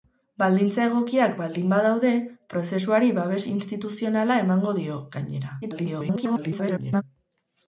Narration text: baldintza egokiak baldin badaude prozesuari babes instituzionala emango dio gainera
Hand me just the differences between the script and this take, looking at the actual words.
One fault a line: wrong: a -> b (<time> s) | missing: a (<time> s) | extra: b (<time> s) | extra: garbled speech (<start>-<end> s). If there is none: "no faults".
extra: garbled speech (5.6-7.0 s)